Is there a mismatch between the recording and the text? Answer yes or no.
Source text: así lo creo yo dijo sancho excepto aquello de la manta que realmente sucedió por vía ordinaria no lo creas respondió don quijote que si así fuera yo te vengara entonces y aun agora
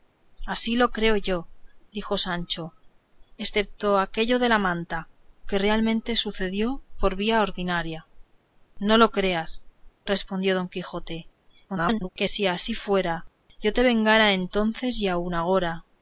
yes